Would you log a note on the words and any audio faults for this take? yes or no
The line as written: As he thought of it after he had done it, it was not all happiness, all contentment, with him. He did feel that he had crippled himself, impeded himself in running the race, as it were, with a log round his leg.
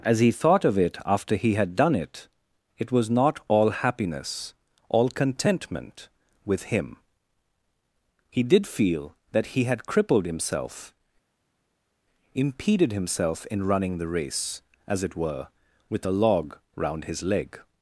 no